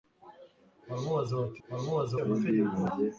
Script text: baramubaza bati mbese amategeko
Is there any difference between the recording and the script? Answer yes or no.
yes